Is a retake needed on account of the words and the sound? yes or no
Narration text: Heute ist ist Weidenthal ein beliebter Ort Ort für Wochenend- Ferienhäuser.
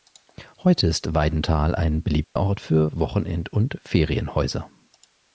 yes